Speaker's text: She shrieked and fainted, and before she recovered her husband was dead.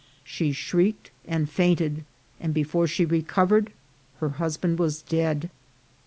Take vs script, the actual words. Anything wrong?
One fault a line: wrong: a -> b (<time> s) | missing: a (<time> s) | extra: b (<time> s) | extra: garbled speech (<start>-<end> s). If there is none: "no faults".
no faults